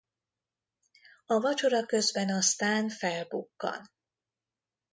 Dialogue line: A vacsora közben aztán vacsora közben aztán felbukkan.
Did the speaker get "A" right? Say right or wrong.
right